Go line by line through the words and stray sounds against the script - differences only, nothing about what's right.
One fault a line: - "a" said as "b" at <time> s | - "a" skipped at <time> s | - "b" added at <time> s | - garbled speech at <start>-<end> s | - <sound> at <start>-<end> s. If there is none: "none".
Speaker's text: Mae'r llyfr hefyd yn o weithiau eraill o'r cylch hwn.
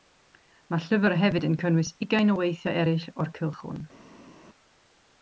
- "cynnwys ugain" added at 1.6 s